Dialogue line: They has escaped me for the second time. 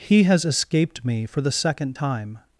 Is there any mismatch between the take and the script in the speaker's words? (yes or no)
yes